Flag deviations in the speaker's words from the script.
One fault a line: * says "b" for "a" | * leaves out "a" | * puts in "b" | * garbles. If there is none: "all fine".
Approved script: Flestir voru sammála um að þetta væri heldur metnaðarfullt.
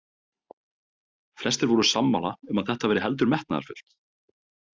all fine